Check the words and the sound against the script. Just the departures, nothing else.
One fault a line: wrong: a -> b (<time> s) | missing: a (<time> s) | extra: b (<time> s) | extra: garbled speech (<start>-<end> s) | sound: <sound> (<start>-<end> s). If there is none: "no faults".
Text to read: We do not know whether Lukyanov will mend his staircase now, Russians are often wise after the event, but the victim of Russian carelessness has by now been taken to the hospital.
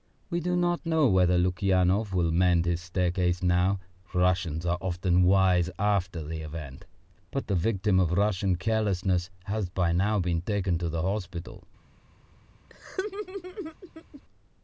sound: laugh (12.7-14.2 s)